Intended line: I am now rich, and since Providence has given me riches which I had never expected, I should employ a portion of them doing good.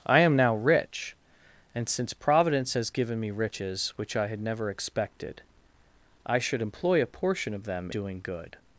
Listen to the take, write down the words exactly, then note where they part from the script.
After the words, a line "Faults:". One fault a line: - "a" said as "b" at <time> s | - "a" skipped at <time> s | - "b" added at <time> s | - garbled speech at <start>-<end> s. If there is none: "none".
I am now rich, and since Providence has given me riches which I had never expected, I should employ a portion of them doing good.
Faults:
none